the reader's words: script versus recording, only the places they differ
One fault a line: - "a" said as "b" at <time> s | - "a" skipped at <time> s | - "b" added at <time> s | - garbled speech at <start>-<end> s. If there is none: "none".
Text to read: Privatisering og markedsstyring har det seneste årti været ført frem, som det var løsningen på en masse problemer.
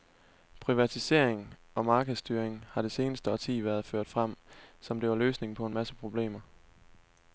none